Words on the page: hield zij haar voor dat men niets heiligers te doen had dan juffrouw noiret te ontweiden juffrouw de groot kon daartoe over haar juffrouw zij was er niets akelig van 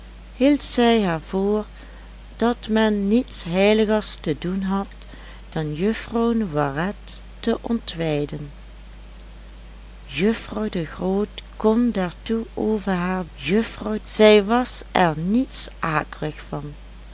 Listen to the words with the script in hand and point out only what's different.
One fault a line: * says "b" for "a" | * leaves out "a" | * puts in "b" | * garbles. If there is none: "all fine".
all fine